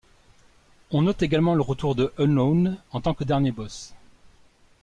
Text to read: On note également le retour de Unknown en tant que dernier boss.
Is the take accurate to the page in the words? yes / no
yes